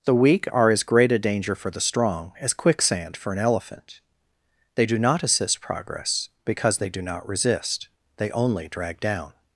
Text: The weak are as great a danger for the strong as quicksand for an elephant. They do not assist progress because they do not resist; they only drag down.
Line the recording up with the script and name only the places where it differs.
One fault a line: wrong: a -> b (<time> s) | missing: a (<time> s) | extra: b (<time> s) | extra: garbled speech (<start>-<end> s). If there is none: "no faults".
no faults